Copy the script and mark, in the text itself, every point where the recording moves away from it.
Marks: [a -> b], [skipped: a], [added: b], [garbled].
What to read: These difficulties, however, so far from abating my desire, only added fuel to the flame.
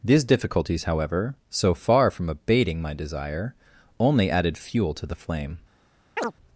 These difficulties, however, so far from abating my desire, only added fuel to the flame.